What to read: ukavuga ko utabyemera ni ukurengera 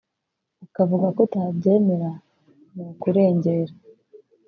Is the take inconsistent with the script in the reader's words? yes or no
no